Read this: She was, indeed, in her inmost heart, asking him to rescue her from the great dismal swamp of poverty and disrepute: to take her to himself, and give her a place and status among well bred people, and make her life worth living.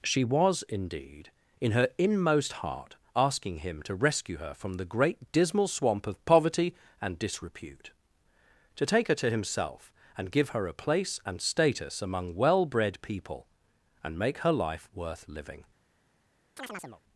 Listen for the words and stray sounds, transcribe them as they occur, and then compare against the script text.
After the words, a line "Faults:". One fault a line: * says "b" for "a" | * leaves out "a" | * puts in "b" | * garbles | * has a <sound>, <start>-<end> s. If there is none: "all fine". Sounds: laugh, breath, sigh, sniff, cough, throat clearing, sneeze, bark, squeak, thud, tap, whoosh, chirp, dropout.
She was, indeed, in her inmost heart, asking him to rescue her from the great dismal swamp of poverty and disrepute: to take her to himself, and give her a place and status among well bred people, and make her life worth living.
Faults:
* has a chirp, 16.6-17.0 s